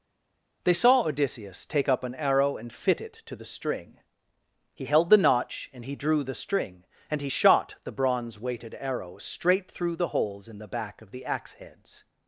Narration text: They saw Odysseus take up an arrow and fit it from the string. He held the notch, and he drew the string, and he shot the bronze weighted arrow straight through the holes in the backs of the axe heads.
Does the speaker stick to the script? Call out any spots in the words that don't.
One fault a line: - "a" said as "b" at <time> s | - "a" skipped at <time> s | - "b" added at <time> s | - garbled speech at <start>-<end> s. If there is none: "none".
- "from" said as "to" at 3.3 s
- "backs" said as "back" at 10.7 s